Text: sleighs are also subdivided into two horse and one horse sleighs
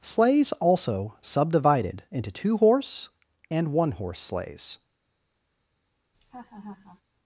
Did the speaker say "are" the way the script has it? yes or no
no